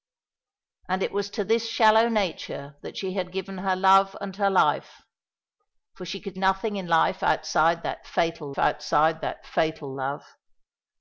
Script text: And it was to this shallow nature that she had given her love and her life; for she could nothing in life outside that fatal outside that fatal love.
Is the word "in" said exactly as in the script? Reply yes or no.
yes